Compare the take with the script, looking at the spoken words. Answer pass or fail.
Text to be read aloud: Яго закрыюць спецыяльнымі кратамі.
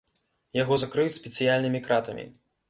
pass